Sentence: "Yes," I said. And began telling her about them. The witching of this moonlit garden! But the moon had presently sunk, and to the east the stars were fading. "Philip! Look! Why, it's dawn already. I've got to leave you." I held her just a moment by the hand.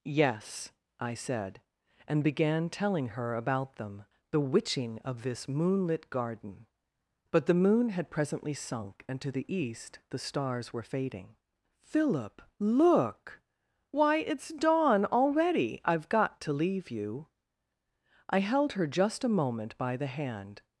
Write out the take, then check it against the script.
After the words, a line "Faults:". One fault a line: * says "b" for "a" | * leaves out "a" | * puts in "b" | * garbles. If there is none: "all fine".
"Yes," I said. And began telling her about them. The witching of this moonlit garden! But the moon had presently sunk, and to the east the stars were fading. "Philip! Look! Why, it's dawn already. I've got to leave you." I held her just a moment by the hand.
Faults:
all fine